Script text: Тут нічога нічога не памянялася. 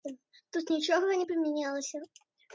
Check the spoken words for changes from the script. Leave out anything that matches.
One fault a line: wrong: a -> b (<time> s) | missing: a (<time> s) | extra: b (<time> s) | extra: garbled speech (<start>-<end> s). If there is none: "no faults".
missing: нічога (1.2 s)